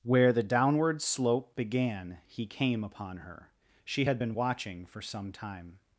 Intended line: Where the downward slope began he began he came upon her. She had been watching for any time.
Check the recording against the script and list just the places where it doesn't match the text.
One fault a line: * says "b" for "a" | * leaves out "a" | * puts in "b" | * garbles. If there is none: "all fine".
* leaves out "began he"
* says "some" for "any"